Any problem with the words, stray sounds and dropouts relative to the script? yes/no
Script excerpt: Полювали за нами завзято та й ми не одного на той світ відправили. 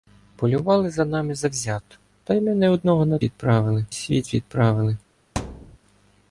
yes